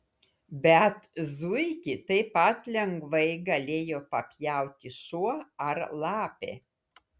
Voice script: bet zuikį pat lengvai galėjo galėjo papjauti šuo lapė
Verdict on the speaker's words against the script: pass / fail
fail